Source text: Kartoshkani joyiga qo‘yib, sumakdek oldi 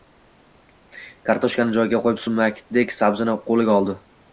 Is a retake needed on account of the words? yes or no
yes